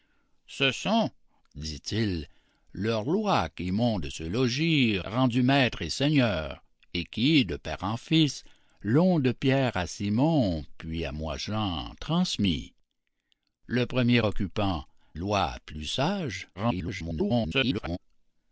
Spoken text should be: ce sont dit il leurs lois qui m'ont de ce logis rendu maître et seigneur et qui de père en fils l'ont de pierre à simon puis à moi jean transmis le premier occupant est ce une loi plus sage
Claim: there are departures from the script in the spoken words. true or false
true